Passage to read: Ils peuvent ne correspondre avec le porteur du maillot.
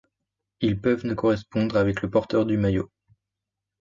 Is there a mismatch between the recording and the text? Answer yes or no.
no